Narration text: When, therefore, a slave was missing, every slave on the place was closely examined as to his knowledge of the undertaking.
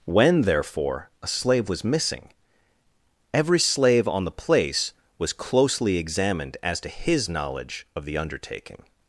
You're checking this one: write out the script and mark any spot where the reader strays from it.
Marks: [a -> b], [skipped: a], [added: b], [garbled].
When, therefore, a slave was missing, every slave on the place was closely examined as to his knowledge of the undertaking.